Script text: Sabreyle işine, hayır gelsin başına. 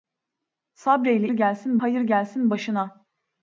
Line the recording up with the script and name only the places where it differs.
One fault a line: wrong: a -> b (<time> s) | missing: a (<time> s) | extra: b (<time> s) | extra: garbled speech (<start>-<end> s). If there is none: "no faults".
wrong: işine -> gelsin (1.3 s)